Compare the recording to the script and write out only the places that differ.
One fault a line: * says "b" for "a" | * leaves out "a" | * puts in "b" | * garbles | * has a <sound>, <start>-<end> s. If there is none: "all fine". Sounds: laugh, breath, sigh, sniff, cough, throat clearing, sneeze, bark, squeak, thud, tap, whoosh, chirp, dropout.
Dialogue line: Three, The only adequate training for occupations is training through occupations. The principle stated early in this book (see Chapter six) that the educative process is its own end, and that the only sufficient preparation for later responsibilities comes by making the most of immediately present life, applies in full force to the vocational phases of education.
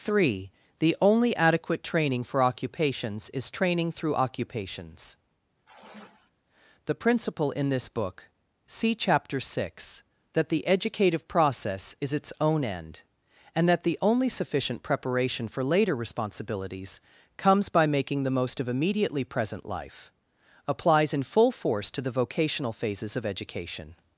* has a sigh, 5.6-6.3 s
* leaves out "stated early"